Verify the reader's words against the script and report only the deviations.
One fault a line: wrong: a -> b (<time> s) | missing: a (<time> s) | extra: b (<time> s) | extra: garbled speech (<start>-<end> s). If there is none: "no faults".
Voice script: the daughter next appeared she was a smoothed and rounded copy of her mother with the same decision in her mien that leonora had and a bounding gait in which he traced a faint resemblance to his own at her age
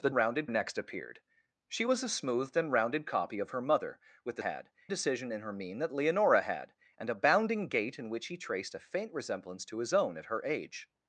wrong: daughter -> rounded (0.1 s)
wrong: same -> had (4.4 s)